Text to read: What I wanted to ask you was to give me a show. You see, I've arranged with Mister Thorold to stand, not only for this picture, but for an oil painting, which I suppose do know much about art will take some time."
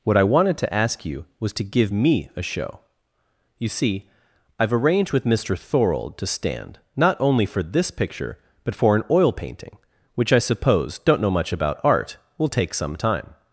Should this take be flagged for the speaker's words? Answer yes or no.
yes